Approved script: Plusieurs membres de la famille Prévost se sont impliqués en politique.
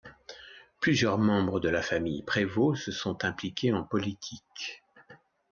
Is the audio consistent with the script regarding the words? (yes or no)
yes